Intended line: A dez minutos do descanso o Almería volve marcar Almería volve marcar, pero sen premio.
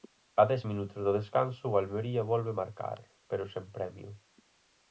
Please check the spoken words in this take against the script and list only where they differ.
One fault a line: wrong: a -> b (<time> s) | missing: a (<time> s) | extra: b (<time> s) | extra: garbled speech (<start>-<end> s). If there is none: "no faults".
missing: Almería volve marcar (3.0 s)